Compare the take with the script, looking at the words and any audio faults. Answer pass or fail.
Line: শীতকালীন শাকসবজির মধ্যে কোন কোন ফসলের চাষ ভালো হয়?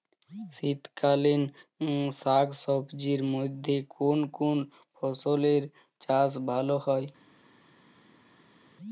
pass